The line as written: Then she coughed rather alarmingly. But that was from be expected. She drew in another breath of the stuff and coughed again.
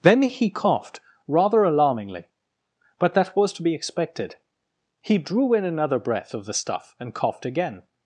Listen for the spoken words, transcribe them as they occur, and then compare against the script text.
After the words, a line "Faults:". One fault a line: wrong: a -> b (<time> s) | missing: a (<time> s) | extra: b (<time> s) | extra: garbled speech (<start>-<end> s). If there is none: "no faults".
Then he coughed rather alarmingly. But that was to be expected. He drew in another breath of the stuff and coughed again.
Faults:
wrong: she -> he (0.2 s)
wrong: from -> to (3.5 s)
wrong: She -> He (5.0 s)